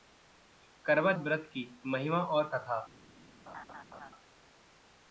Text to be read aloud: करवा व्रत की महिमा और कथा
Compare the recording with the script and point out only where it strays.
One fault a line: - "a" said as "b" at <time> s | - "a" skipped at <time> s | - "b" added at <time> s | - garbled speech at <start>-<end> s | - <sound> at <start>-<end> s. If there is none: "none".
- laugh at 3.5-4.1 s